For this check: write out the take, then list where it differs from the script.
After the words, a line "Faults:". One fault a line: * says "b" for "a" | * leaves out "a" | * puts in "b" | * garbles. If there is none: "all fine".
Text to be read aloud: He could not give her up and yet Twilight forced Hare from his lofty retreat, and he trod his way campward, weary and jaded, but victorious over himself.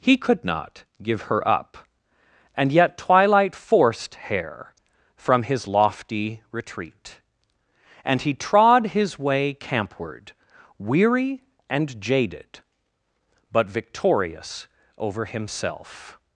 He could not give her up and yet Twilight forced Hare from his lofty retreat, and he trod his way campward, weary and jaded, but victorious over himself.
Faults:
all fine